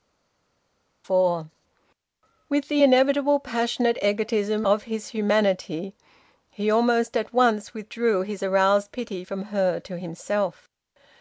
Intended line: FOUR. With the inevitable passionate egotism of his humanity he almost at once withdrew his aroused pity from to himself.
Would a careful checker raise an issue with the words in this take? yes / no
yes